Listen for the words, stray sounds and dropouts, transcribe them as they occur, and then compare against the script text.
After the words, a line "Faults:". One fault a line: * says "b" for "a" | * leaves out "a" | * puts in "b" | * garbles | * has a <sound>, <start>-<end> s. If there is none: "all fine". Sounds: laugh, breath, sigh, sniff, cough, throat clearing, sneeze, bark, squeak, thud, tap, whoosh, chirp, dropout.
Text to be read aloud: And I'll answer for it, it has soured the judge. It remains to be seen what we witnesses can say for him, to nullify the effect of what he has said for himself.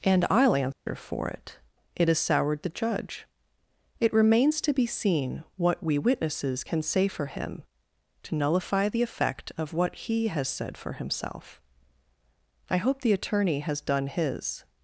And I'll answer for it, it has soured the judge. It remains to be seen what we witnesses can say for him, to nullify the effect of what he has said for himself. I hope the attorney has done his
Faults:
* has a dropout, 0.7-0.9 s
* puts in "I hope the attorney has done his"